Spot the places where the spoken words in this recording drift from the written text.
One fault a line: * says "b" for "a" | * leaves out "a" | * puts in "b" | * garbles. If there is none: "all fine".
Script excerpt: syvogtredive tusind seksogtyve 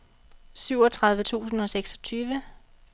* puts in "og"